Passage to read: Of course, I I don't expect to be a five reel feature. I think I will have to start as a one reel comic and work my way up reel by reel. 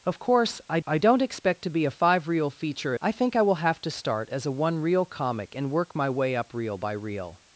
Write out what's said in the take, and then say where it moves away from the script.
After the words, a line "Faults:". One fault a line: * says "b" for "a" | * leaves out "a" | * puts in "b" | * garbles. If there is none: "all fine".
Of course, I I don't expect to be a five reel feature. I think I will have to start as a one reel comic and work my way up reel by reel.
Faults:
all fine